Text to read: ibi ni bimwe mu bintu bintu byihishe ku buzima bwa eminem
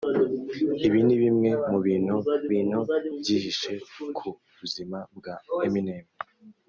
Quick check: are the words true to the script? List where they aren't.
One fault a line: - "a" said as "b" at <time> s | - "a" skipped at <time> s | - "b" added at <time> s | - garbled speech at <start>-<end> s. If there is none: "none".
none